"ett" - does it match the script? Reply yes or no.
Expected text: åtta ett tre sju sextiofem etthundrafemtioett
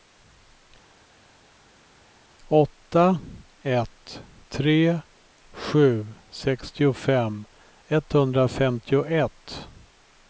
yes